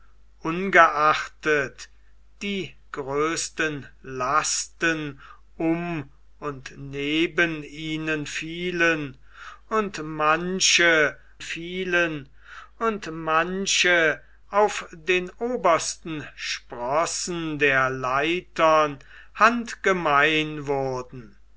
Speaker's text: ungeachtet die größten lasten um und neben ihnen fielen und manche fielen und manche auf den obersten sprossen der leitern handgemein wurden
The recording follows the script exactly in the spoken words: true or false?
true